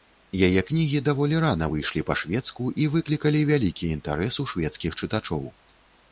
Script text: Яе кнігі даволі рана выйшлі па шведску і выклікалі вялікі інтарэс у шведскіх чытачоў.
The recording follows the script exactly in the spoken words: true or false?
true